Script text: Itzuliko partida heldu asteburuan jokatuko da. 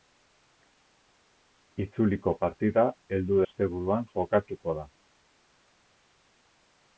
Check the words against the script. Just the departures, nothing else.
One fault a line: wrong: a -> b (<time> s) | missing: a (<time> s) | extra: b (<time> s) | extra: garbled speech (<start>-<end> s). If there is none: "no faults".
no faults